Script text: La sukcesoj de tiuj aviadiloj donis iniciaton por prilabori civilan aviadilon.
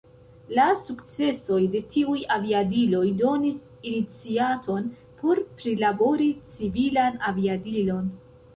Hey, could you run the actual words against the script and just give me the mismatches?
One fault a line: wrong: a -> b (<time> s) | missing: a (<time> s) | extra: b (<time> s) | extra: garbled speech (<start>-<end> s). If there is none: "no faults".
no faults